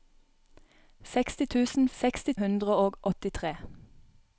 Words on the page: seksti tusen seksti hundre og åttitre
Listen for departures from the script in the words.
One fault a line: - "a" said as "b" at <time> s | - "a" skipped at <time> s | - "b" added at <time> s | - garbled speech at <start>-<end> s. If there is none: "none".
none